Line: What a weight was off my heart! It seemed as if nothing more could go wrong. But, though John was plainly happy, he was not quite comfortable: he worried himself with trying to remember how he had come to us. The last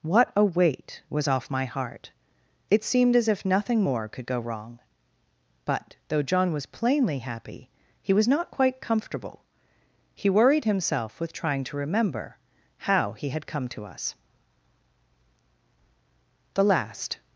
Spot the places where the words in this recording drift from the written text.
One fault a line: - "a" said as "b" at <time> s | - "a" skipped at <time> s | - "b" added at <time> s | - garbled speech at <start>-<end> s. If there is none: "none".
none